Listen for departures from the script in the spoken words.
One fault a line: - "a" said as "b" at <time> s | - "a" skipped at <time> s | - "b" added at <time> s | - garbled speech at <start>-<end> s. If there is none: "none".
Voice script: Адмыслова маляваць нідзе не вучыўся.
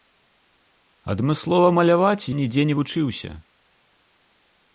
none